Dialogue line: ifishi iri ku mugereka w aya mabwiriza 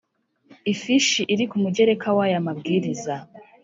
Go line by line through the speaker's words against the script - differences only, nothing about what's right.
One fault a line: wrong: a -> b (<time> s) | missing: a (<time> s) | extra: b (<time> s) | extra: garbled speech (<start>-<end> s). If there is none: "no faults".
no faults